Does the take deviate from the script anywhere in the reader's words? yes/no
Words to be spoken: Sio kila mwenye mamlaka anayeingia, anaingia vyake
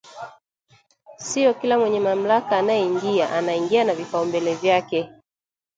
yes